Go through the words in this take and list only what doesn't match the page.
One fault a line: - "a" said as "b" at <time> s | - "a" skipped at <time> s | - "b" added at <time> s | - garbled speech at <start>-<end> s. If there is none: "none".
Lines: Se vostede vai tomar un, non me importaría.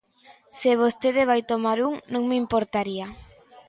none